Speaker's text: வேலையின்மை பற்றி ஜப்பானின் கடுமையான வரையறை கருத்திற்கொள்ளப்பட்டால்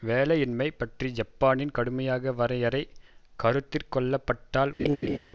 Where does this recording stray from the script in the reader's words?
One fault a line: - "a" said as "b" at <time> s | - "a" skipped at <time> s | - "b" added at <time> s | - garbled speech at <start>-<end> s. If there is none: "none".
none